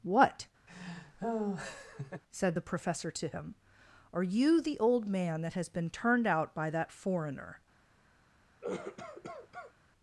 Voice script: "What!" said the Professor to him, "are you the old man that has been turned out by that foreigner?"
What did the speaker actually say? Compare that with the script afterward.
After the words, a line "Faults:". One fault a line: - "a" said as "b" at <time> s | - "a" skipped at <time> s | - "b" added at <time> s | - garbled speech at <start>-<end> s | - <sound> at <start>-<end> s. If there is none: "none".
"What!" said the Professor to him, "are you the old man that has been turned out by that foreigner?"
Faults:
- laugh at 0.7-2.2 s
- cough at 8.6-9.7 s